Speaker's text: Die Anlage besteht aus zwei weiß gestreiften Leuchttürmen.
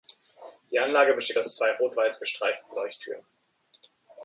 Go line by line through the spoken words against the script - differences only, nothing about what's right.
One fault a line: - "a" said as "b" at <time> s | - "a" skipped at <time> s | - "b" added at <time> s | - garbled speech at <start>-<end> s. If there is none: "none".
- "rot" added at 1.8 s